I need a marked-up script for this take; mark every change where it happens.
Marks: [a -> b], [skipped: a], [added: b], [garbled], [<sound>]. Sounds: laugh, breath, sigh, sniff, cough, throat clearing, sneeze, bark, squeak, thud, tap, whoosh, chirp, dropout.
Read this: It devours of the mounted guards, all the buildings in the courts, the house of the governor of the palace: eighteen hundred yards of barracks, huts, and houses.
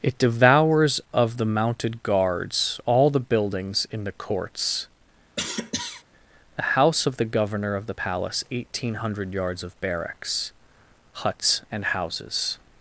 It devours of the mounted guards, all the buildings in the courts, [cough] the house of the governor of the palace: eighteen hundred yards of barracks, huts, and houses.